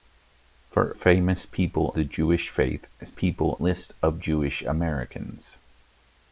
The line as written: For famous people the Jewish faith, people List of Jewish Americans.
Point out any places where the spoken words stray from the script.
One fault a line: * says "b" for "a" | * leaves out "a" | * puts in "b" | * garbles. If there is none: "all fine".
all fine